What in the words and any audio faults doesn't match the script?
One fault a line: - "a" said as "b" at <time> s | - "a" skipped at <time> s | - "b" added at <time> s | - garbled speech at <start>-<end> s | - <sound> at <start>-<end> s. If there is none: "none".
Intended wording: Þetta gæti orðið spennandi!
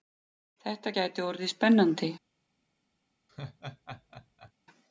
- laugh at 3.3-4.5 s